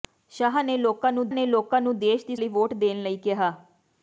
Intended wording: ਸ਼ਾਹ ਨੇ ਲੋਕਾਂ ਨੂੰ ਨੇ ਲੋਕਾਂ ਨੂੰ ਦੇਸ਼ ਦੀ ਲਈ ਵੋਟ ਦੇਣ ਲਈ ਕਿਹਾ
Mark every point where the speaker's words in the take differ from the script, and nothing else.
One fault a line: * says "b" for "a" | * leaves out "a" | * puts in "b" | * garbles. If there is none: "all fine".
all fine